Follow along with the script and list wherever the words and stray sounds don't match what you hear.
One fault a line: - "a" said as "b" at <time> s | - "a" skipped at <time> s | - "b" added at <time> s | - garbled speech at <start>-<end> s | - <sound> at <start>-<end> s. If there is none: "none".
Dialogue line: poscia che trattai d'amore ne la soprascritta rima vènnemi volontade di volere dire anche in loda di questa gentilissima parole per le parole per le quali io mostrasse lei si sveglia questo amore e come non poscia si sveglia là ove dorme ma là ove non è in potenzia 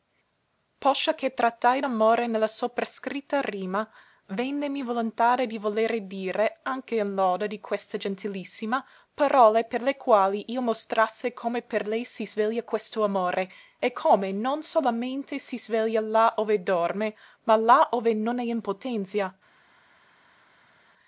- "parole per le" skipped at 10.0 s
- "come per" added at 11.3 s
- "poscia" said as "solamente" at 14.6 s